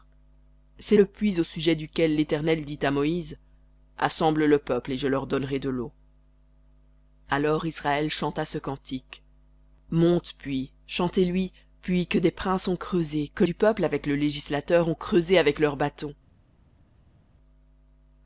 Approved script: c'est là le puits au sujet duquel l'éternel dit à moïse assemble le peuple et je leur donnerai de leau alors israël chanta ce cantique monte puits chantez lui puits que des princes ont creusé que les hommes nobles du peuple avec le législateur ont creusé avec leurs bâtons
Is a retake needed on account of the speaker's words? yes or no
yes